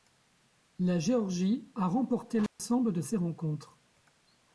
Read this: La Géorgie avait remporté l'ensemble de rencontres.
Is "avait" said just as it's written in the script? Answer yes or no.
no